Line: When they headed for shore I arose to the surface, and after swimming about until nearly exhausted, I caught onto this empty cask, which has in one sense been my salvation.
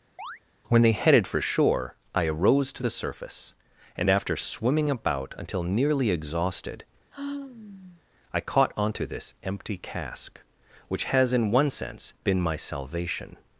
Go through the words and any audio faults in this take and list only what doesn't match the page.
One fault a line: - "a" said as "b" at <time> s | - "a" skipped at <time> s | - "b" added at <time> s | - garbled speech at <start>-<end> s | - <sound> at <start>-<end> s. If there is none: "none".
- chirp at 0.2-0.4 s
- sigh at 7.1-8.0 s